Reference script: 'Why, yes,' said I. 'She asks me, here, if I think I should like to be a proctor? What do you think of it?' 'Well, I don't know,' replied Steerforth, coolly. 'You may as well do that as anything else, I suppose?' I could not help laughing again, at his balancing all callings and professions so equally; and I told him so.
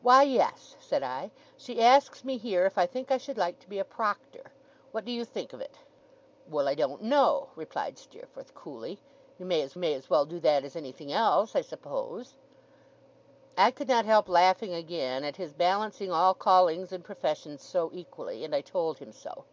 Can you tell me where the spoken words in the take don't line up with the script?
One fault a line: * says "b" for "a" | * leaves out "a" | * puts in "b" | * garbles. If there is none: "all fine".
* puts in "may as"